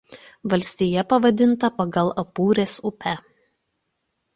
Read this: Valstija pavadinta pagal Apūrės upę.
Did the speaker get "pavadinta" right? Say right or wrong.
right